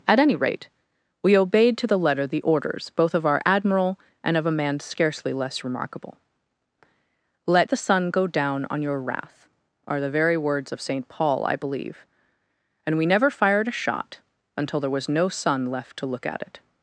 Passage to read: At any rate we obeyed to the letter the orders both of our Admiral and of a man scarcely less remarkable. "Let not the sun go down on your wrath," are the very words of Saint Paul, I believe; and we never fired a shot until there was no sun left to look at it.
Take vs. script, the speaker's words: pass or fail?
fail